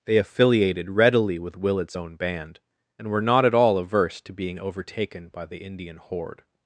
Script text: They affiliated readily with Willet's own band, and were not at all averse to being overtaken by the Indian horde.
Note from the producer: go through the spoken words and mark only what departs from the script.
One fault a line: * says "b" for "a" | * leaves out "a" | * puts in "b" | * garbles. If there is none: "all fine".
all fine